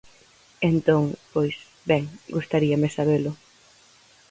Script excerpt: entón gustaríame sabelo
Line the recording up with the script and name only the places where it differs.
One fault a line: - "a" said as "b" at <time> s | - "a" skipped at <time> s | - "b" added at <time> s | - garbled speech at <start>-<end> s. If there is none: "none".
- "pois ben" added at 1.3 s